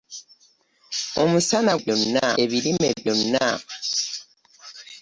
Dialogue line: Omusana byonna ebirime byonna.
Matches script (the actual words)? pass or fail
pass